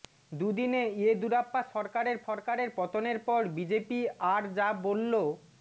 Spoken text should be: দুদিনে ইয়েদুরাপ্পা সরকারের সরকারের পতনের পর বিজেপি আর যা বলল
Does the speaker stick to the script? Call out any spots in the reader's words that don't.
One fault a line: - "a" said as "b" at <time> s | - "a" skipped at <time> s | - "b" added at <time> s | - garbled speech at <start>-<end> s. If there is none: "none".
none